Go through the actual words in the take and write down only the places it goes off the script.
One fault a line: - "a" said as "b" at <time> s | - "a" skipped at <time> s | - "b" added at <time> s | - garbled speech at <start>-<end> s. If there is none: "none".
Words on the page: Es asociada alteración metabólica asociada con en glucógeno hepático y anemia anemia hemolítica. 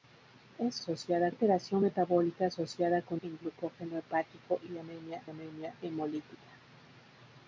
none